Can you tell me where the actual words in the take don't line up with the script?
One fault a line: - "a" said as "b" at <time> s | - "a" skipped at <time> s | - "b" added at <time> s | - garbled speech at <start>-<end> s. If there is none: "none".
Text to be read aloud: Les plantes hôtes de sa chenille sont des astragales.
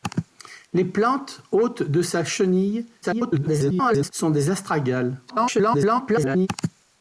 - garbled speech at 3.0-4.1 s
- garbled speech at 5.3-6.5 s